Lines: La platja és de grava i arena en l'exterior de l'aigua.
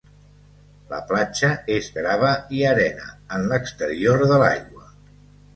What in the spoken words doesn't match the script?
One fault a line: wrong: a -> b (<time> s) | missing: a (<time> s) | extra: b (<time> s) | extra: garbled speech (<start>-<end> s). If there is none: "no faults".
missing: de (1.9 s)